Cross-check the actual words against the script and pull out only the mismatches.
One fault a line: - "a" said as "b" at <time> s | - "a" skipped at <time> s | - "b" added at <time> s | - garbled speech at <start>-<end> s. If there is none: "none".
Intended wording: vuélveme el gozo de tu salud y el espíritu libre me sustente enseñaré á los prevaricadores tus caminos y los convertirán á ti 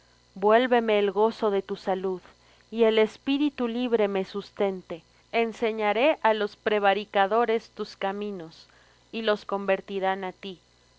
none